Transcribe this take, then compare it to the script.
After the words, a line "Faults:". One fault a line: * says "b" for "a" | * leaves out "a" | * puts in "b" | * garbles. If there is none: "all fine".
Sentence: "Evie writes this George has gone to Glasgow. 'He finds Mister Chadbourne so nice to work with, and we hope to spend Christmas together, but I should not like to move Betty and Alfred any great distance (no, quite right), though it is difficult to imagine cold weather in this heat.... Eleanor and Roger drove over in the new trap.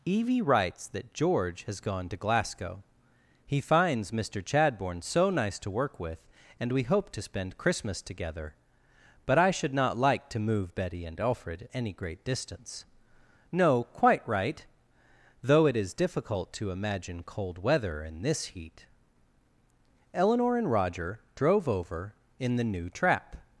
"Evie writes that George has gone to Glasgow. 'He finds Mister Chadbourne so nice to work with, and we hope to spend Christmas together, but I should not like to move Betty and Alfred any great distance (no, quite right), though it is difficult to imagine cold weather in this heat.... Eleanor and Roger drove over in the new trap.
Faults:
* says "that" for "this"